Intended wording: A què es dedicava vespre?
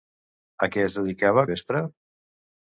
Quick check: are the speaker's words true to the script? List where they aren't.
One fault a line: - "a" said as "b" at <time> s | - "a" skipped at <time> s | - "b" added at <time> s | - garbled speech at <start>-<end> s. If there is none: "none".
none